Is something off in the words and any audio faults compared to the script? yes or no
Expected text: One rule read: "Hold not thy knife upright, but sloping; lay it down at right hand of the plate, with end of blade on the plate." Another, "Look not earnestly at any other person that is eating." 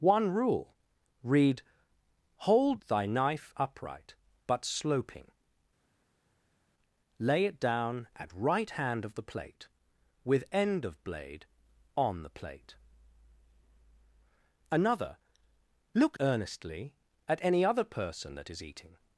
yes